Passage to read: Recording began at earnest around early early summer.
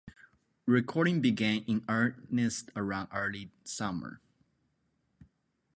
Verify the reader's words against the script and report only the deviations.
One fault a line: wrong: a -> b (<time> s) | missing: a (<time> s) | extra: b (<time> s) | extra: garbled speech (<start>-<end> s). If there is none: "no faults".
wrong: at -> in (1.6 s)
missing: early (3.5 s)